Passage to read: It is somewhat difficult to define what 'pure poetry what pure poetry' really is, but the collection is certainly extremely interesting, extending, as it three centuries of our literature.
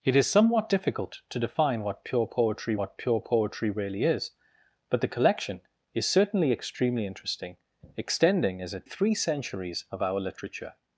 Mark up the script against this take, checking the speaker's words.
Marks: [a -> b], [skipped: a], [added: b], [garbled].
It is somewhat difficult to define what 'pure poetry what pure poetry' really is, but the collection is certainly extremely interesting, extending, as it three centuries of our literature.